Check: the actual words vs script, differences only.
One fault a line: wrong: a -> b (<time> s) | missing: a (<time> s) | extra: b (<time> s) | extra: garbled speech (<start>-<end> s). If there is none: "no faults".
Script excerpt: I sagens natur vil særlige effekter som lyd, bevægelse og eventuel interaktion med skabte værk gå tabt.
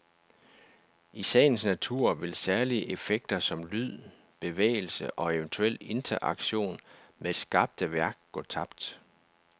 no faults